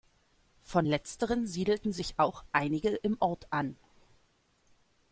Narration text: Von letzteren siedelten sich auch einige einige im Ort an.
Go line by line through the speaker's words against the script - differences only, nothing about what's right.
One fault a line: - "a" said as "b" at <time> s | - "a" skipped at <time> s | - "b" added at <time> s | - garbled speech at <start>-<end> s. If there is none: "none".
- "einige" skipped at 2.9 s